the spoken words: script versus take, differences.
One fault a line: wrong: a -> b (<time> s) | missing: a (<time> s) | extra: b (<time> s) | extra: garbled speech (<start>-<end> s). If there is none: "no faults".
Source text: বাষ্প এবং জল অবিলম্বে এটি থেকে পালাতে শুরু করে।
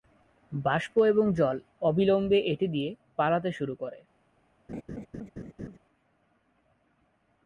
wrong: থেকে -> দিয়ে (2.7 s)